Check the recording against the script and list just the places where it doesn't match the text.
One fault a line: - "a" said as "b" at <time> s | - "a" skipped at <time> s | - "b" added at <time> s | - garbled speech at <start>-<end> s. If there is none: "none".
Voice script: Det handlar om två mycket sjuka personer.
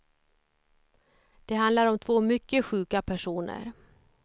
none